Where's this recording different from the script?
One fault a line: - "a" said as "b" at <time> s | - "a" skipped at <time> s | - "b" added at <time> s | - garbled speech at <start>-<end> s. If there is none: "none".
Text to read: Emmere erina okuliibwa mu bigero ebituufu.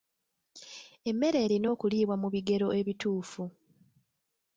none